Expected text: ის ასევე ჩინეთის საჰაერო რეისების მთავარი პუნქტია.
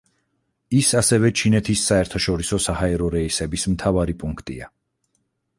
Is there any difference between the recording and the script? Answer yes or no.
yes